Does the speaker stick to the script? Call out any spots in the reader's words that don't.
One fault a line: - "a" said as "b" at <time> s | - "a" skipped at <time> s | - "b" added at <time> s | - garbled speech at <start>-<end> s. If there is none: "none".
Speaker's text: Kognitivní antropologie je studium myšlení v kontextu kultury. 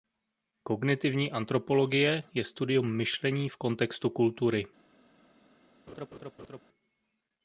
none